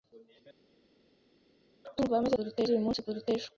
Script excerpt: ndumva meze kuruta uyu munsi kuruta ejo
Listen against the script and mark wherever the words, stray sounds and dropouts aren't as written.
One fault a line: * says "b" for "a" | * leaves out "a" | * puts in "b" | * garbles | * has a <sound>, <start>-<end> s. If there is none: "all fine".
all fine